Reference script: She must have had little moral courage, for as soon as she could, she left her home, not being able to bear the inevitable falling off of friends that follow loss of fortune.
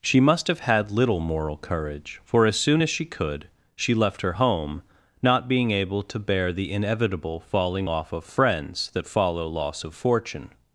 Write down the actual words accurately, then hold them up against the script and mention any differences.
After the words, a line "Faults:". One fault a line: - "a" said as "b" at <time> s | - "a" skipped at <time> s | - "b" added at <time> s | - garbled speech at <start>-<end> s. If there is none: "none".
She must have had little moral courage, for as soon as she could, she left her home, not being able to bear the inevitable falling off of friends that follow loss of fortune.
Faults:
none